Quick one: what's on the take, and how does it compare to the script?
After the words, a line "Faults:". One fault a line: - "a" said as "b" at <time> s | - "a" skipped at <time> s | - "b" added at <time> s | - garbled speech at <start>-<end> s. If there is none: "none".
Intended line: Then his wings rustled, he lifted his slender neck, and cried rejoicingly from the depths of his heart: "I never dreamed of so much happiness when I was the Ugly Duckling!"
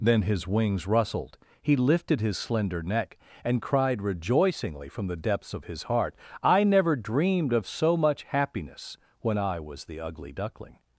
Then his wings rustled, he lifted his slender neck, and cried rejoicingly from the depths of his heart: "I never dreamed of so much happiness when I was the Ugly Duckling!"
Faults:
none